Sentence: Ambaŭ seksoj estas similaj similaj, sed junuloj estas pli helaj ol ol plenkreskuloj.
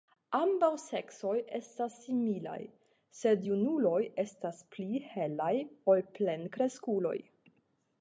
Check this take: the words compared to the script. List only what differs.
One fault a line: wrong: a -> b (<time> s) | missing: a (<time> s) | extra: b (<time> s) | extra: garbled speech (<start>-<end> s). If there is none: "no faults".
missing: similaj (2.6 s)
missing: ol (6.1 s)